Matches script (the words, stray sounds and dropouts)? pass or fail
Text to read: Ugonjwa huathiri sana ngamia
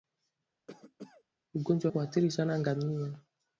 fail